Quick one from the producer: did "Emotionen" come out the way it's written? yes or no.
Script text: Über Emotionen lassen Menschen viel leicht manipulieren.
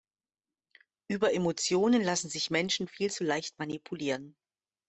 yes